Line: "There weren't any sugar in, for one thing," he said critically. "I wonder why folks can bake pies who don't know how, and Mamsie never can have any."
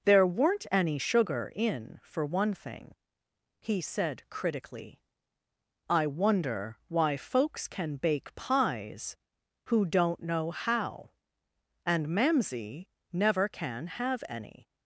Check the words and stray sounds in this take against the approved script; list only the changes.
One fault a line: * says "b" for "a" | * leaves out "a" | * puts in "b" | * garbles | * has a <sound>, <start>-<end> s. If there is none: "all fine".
all fine